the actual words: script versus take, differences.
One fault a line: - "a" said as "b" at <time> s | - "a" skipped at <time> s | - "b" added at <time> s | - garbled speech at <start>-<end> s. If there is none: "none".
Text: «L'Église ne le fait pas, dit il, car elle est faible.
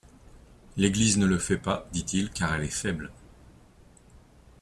none